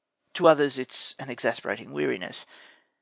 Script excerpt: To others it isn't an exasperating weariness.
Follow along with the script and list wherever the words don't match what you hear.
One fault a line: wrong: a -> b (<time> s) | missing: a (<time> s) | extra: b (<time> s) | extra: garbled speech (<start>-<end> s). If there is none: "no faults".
wrong: isn't -> is (0.9 s)